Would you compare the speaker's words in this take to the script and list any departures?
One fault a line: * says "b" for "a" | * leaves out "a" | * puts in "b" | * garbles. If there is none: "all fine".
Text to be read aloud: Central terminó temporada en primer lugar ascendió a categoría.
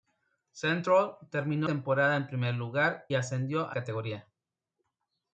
all fine